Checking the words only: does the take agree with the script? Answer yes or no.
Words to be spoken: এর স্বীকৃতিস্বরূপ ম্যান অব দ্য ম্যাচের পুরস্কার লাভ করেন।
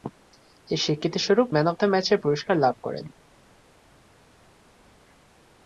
yes